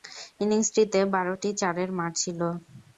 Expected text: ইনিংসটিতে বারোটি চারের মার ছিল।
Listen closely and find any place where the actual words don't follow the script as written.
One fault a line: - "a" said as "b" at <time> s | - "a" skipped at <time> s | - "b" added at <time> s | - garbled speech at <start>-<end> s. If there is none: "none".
none